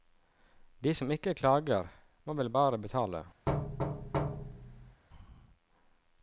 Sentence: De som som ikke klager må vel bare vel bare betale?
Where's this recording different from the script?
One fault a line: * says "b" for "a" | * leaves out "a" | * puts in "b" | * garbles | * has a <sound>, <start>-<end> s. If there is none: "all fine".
* leaves out "som"
* leaves out "vel bare"
* has a thud, 3.5-5.0 s